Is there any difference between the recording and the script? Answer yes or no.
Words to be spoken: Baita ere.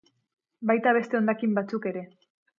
yes